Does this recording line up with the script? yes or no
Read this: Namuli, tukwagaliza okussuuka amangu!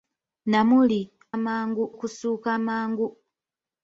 no